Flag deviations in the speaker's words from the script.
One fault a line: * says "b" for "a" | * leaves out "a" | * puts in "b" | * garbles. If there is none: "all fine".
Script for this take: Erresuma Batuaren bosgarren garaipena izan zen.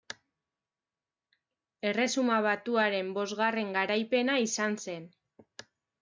all fine